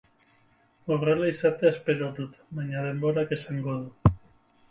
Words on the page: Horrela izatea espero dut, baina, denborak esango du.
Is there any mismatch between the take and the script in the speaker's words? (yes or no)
no